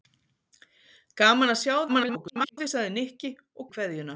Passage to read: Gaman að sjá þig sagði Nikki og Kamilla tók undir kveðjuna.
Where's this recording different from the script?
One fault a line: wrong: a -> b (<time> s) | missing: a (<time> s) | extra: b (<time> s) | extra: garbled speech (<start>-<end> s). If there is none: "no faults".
extra: garbled speech (1.9-2.6 s)
missing: Kamilla tók undir (3.7 s)